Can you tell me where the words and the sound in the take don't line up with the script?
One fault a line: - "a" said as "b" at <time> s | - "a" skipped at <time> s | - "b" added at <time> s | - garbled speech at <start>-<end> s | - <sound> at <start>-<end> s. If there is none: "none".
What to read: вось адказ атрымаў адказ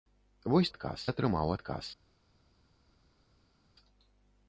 none